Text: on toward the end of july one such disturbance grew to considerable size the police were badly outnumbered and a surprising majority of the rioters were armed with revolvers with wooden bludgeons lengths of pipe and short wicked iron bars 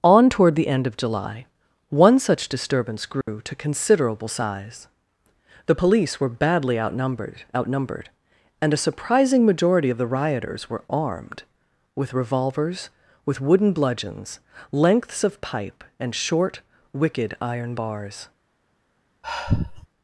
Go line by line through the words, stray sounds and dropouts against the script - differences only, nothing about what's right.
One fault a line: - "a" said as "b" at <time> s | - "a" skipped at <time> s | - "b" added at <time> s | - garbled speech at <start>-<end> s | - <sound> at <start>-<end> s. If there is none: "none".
- dropout at 3.2-3.3 s
- "outnumbered" added at 7.6 s
- sigh at 19.2-19.9 s